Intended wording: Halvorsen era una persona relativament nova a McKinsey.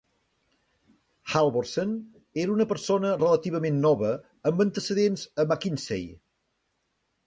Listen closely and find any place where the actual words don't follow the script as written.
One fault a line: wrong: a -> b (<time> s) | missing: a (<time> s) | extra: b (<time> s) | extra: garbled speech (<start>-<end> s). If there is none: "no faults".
extra: amb antecedents (4.5 s)